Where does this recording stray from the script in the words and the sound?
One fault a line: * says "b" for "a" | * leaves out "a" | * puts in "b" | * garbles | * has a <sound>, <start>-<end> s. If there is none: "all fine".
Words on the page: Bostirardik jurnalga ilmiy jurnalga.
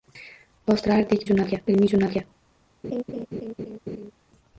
* has a laugh, 2.8-4.1 s